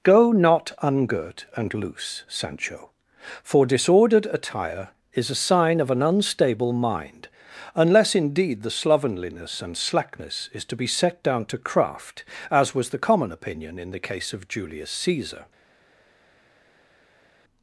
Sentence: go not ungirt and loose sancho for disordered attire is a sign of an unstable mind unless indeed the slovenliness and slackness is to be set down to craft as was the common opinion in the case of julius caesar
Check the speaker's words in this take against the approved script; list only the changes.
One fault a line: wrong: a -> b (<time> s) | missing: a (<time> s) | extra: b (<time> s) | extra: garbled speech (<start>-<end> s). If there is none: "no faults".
no faults